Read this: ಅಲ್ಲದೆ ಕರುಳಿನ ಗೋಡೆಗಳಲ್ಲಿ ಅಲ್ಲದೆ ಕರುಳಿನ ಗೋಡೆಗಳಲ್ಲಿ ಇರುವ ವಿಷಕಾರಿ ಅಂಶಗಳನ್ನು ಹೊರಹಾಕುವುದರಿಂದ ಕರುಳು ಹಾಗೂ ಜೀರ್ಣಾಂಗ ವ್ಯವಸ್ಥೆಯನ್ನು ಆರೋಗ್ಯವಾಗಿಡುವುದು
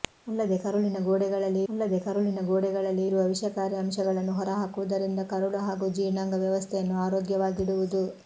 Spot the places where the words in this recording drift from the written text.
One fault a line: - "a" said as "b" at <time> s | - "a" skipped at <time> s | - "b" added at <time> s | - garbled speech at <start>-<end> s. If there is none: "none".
none